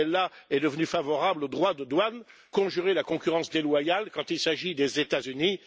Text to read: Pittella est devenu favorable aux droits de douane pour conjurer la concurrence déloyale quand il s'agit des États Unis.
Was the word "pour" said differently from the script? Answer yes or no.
yes